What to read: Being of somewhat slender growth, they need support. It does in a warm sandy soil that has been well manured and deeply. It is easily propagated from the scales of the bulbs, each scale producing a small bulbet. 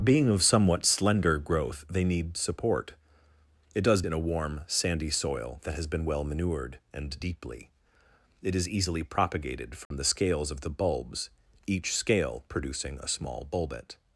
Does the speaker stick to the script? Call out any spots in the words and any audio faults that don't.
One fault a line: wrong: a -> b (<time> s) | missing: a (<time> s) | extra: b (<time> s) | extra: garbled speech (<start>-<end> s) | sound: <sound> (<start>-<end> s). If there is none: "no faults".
sound: dropout (9.8-9.9 s)